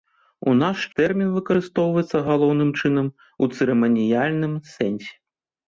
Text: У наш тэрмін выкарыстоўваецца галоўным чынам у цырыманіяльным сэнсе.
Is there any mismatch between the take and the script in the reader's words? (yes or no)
no